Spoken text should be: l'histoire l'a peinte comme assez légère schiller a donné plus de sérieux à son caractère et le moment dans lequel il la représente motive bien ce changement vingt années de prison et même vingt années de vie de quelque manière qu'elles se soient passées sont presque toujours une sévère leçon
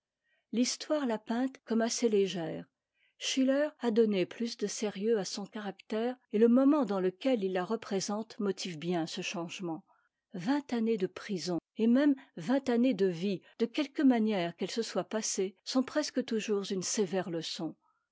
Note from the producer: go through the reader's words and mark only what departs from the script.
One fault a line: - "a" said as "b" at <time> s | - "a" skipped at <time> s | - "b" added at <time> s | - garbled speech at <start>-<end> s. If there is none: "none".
none